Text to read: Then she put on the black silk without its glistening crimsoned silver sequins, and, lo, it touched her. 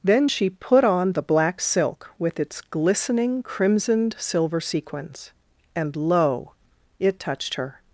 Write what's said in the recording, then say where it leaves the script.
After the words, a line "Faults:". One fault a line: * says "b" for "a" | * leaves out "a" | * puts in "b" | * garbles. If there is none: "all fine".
Then she put on the black silk with its glistening crimsoned silver sequins, and, lo, it touched her.
Faults:
* says "with" for "without"